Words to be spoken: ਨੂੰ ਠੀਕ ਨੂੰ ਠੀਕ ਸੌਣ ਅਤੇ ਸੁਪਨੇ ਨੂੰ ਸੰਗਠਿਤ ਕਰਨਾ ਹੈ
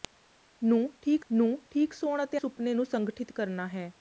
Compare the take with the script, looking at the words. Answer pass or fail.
pass